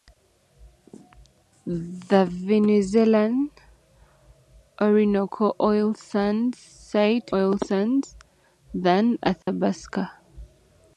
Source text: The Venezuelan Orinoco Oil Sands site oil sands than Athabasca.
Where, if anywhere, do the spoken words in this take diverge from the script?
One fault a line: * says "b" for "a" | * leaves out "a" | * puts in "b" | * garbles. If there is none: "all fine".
all fine